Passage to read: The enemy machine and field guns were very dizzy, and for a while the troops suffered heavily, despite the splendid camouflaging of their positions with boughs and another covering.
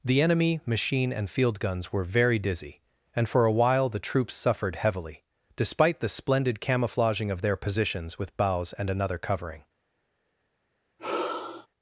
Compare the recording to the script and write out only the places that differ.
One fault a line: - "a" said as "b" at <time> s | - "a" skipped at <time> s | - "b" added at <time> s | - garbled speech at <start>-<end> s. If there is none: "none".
none